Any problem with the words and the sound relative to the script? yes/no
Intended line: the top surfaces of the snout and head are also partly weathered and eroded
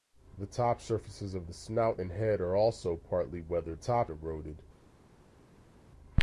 yes